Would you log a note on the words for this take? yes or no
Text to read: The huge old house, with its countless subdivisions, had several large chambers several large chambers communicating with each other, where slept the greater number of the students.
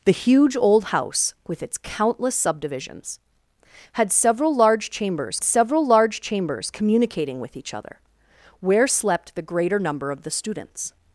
no